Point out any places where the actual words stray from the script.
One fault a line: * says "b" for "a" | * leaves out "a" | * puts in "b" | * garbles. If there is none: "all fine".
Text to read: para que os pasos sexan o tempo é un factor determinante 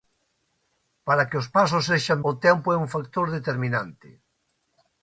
all fine